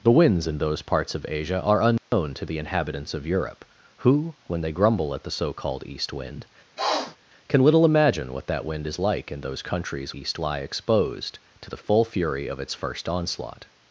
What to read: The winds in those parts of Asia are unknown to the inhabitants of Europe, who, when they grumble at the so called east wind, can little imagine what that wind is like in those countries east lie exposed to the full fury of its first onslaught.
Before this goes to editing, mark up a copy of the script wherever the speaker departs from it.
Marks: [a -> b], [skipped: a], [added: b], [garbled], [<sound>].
The winds in those parts of Asia are unknown [dropout] to the inhabitants of Europe, who, when they grumble at the so called east wind, [sniff] can little imagine what that wind is like in those countries east lie exposed to the full fury of its first onslaught.